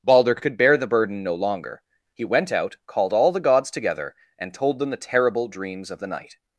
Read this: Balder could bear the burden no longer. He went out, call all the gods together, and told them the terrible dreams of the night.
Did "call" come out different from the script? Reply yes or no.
yes